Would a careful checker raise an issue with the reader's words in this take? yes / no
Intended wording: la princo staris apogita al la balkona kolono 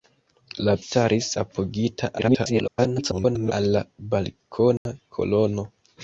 yes